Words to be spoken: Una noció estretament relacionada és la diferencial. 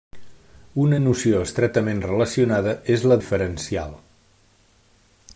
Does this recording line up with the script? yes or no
yes